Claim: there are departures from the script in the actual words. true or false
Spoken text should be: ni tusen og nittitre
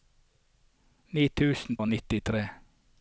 false